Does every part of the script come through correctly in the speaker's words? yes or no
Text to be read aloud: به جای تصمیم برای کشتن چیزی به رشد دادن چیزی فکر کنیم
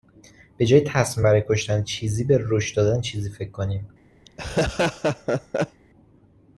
yes